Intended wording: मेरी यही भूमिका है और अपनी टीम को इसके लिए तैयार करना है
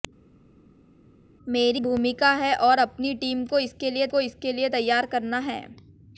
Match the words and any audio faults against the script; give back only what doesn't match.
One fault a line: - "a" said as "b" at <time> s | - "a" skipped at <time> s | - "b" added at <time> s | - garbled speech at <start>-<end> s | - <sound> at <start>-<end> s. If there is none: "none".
- "यही" skipped at 1.8 s
- "को इसके लिए" added at 4.1 s